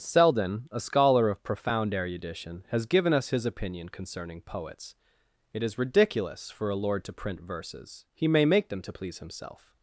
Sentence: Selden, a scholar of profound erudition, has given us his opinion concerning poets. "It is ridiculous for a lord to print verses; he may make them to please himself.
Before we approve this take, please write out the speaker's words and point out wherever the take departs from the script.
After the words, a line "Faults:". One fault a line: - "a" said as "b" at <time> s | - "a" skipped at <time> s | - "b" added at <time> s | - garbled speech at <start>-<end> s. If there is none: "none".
Selden, a scholar of profound erudition, has given us his opinion concerning poets. "It is ridiculous for a lord to print verses; he may make them to please himself.
Faults:
none